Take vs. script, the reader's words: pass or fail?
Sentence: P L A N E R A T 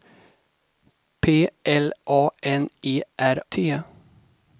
fail